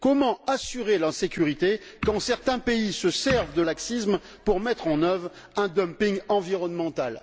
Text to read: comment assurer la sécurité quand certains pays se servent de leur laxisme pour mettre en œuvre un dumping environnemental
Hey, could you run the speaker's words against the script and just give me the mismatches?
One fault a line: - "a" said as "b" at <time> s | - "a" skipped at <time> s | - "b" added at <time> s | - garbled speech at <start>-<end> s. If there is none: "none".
- "leur" skipped at 3.6 s